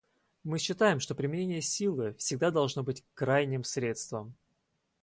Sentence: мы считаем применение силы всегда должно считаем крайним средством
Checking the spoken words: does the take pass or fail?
fail